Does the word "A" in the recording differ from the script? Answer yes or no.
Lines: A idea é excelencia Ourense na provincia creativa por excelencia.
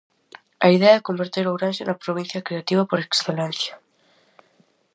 no